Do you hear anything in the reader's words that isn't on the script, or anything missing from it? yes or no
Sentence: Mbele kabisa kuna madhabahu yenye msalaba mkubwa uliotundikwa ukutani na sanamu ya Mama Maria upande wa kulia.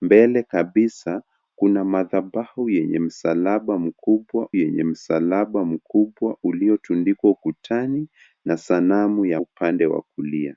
yes